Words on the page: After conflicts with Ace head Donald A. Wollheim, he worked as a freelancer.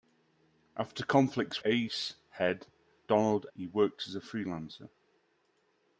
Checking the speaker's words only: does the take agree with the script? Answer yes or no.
no